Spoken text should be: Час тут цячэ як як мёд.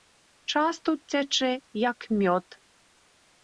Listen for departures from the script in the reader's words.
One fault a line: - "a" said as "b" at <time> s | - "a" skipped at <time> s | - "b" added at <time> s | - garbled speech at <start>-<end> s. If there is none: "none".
- "як" skipped at 2.1 s